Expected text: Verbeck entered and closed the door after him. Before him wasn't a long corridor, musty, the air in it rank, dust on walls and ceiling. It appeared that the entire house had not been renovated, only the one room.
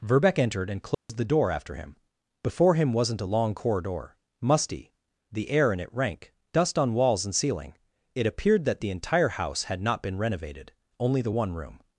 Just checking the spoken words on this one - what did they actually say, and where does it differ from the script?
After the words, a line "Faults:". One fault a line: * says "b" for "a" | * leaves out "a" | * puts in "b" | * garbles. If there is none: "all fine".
Verbeck entered and closed the door after him. Before him wasn't a long corridor, musty, the air in it rank, dust on walls and ceiling. It appeared that the entire house had not been renovated, only the one room.
Faults:
all fine